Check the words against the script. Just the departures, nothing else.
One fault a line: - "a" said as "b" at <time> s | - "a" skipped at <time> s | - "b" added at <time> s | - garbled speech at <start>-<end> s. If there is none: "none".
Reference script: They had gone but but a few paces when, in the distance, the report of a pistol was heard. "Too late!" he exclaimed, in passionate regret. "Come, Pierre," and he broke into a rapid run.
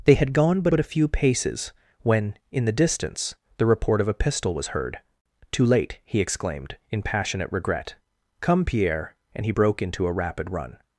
none